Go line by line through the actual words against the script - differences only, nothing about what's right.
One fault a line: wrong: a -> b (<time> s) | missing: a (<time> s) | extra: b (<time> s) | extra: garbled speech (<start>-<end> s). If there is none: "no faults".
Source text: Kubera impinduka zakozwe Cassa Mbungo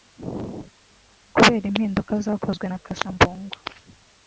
extra: na (2.7 s)